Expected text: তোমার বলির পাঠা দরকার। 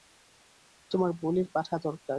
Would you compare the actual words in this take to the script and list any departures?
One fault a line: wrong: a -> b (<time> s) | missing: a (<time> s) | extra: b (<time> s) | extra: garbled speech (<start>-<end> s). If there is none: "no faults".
no faults